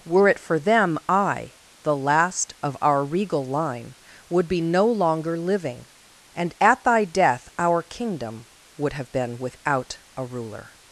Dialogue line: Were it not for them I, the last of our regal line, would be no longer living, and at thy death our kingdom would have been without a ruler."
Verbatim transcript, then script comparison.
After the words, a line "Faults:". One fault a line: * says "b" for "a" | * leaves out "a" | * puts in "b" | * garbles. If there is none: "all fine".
Were it for them I, the last of our regal line, would be no longer living, and at thy death our kingdom would have been without a ruler."
Faults:
* leaves out "not"